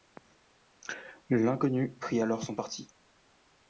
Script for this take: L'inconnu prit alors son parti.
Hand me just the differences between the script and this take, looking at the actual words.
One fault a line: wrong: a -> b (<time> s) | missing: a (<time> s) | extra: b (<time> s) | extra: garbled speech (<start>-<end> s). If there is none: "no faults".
no faults